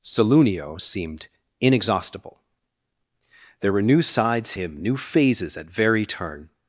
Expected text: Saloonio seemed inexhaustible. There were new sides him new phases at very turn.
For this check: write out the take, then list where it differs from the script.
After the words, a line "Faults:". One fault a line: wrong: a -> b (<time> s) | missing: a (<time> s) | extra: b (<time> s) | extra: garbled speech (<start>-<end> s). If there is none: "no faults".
Saloonio seemed inexhaustible. There were new sides him new phases at very turn.
Faults:
no faults